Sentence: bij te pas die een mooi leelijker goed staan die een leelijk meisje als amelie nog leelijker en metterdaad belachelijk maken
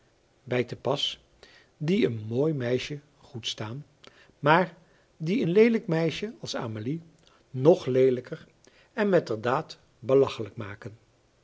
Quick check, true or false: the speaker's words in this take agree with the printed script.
false